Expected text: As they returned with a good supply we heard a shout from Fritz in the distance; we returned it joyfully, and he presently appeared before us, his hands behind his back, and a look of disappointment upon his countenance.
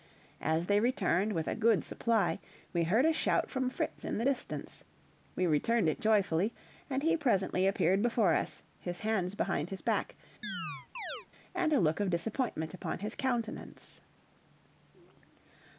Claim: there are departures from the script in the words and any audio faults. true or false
true